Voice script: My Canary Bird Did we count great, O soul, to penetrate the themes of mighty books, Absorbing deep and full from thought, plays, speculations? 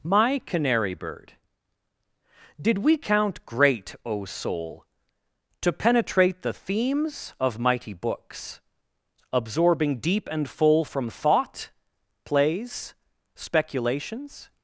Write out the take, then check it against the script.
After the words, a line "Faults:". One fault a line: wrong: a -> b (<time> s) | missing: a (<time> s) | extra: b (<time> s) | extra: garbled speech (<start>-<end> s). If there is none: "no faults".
My Canary Bird Did we count great, O soul, to penetrate the themes of mighty books, Absorbing deep and full from thought, plays, speculations?
Faults:
no faults